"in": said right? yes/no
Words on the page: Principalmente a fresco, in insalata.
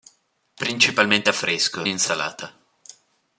no